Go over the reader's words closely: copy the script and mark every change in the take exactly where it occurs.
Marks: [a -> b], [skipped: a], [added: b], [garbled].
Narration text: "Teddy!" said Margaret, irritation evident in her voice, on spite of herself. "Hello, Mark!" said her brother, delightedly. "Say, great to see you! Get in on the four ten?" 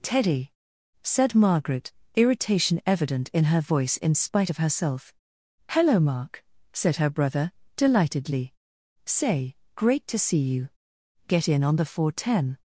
"Teddy!" said Margaret, irritation evident in her voice, [on -> in] spite of herself. "Hello, Mark!" said her brother, delightedly. "Say, great to see you! Get in on the four ten?"